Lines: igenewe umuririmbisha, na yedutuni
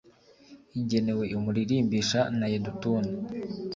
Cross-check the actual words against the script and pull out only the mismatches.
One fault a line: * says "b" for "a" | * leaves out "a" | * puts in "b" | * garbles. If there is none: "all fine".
all fine